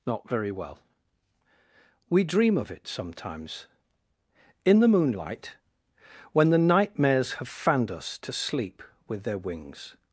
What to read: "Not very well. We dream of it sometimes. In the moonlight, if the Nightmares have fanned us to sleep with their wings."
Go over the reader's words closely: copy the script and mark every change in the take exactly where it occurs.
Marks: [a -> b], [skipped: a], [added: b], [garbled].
"Not very well. We dream of it sometimes. In the moonlight, [if -> when] the Nightmares have fanned us to sleep with their wings."